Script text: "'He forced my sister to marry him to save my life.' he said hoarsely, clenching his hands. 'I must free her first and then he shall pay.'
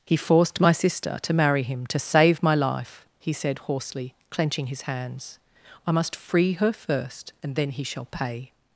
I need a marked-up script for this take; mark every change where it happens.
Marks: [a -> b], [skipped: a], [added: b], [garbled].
"'He forced my sister to marry him to save my life.' he said hoarsely, clenching his hands. 'I must free her first and then he shall pay.'